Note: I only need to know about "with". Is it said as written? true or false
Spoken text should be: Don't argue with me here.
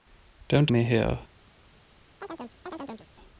false